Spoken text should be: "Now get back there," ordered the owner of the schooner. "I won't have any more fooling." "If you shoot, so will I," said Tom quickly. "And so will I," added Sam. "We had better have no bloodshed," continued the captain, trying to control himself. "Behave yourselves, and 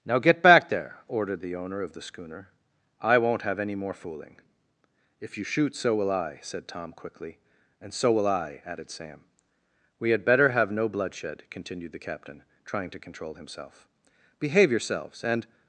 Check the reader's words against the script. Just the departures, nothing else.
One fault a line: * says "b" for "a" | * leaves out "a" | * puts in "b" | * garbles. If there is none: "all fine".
all fine